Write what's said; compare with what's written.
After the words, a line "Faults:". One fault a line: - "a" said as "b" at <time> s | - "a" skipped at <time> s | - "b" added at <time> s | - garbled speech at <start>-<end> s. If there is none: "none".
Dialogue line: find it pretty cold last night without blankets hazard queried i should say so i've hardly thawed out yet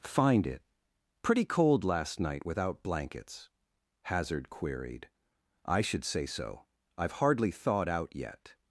find it pretty cold last night without blankets hazard queried i should say so i've hardly thawed out yet
Faults:
none